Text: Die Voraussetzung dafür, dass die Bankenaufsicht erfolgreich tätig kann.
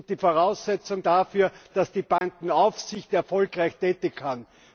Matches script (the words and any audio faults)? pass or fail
fail